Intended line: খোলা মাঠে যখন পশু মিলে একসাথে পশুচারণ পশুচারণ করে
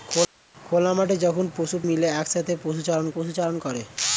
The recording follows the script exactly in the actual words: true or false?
true